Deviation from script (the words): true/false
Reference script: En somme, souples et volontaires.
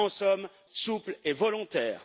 false